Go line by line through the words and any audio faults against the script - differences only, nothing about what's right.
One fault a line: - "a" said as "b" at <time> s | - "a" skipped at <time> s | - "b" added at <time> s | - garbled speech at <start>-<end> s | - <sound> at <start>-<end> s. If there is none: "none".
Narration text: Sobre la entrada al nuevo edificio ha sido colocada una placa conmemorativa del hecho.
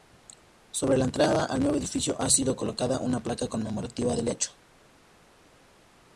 none